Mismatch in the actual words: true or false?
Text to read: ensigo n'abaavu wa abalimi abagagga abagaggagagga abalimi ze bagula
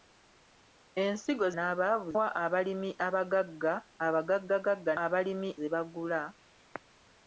false